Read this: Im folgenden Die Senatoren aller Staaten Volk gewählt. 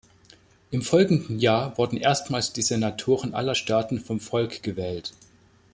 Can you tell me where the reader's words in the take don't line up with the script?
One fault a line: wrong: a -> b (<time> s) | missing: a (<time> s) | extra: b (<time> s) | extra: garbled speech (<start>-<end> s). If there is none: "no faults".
extra: Jahr wurden erstmals (1.4 s)
extra: vom (4.0 s)